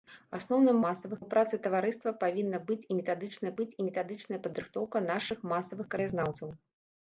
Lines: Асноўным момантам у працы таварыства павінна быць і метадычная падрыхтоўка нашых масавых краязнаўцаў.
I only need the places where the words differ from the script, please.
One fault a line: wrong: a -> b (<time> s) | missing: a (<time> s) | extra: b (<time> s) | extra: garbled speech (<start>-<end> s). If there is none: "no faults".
wrong: момантам -> масавых (0.9 s)
extra: быць і метадычная (3.6 s)